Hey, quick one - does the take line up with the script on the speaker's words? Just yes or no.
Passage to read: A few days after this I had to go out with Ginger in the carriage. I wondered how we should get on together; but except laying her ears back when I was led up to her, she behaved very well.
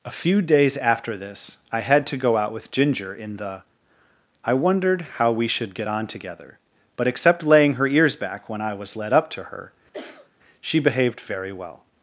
no